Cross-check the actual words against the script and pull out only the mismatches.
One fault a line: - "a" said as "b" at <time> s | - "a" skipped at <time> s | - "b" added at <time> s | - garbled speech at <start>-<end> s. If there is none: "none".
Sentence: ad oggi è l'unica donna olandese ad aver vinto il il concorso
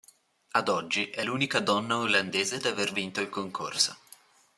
- "il" skipped at 3.3 s